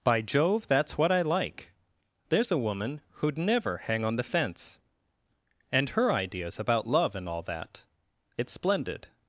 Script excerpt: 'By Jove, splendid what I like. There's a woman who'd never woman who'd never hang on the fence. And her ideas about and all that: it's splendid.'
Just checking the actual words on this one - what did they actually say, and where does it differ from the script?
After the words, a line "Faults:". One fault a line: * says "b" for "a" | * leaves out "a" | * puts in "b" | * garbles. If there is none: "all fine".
'By Jove, that's what I like. There's a woman who'd never hang on the fence. And her ideas about love and all that: it's splendid.'
Faults:
* says "that's" for "splendid"
* leaves out "woman who'd never"
* puts in "love"